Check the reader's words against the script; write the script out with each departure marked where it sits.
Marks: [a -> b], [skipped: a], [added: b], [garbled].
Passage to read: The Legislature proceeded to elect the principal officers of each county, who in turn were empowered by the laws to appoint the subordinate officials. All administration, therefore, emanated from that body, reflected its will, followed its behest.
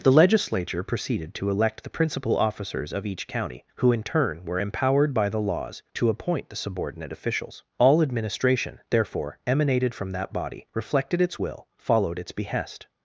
The Legislature proceeded to elect the principal officers of each county, who in turn were empowered by the laws to appoint the subordinate officials. All administration, therefore, emanated from that body, reflected its will, followed its behest.